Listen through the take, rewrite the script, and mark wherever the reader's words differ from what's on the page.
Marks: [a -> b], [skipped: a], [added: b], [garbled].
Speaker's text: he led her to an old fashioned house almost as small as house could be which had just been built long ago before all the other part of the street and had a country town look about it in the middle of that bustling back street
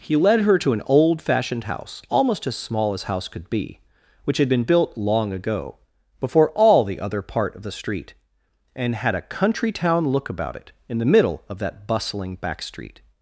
he led her to an old fashioned house almost as small as house could be which had [skipped: just] been built long ago before all the other part of the street and had a country town look about it in the middle of that bustling back street